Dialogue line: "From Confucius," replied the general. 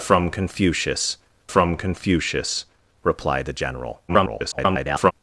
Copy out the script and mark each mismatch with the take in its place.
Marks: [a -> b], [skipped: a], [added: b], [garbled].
"From Confucius," [added: from Confucius] replied the general. [garbled]